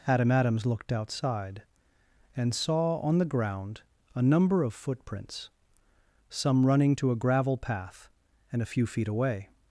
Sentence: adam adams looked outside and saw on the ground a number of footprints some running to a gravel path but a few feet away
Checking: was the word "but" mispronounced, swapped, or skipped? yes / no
yes